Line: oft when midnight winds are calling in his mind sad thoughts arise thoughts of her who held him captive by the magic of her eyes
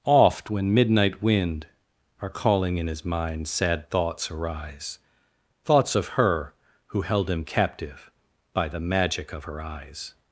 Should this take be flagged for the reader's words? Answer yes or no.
yes